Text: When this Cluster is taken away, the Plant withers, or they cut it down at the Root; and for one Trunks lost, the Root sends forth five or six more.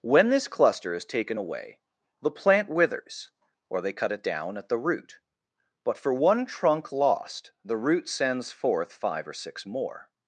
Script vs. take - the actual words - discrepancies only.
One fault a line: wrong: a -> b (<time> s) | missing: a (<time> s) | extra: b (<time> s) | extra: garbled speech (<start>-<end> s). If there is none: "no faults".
wrong: and -> but (5.8 s)
wrong: Trunks -> Trunk (6.4 s)